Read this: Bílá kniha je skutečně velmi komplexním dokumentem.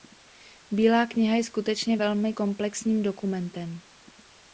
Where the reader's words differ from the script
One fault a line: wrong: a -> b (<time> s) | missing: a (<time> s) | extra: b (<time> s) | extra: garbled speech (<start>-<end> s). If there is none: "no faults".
no faults